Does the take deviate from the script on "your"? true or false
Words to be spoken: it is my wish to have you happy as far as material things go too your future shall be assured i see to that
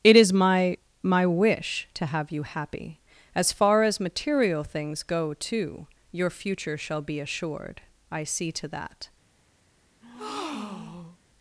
false